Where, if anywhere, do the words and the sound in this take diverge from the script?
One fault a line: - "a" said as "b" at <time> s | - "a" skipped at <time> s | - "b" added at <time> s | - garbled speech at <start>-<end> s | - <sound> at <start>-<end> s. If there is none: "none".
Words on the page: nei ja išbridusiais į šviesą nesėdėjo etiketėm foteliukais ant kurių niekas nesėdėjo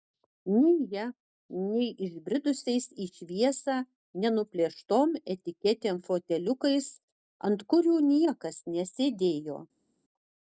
- "nei" added at 1.7 s
- "nesėdėjo" said as "nenuplėštom" at 4.2 s